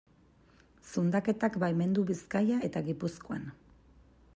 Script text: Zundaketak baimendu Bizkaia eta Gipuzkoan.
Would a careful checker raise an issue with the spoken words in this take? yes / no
no